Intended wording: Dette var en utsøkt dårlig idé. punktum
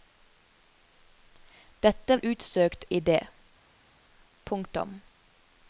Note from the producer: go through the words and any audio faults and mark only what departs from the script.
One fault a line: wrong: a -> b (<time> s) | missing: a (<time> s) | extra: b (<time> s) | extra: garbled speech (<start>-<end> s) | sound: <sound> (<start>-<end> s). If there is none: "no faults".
missing: var (2.2 s)
missing: dårlig (2.9 s)